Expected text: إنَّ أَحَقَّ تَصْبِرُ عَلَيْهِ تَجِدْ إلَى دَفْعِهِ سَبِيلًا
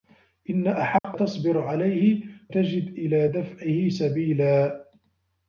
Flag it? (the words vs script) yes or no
no